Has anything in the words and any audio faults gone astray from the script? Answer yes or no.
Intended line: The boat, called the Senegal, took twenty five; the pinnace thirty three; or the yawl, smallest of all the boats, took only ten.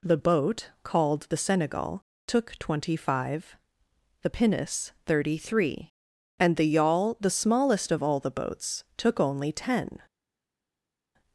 yes